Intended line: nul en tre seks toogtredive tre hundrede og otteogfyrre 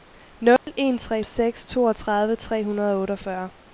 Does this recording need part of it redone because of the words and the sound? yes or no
yes